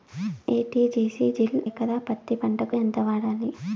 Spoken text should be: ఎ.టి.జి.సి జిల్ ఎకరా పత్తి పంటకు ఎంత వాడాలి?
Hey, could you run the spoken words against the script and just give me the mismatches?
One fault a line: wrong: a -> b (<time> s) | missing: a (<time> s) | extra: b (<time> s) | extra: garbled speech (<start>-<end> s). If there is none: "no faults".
no faults